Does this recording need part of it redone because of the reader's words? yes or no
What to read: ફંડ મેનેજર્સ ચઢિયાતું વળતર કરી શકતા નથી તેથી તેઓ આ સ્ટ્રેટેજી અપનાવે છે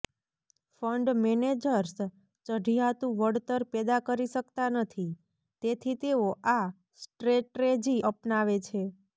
yes